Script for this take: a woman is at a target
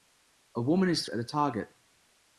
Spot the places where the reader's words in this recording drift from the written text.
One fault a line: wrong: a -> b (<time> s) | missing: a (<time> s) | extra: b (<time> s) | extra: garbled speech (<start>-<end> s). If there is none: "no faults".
no faults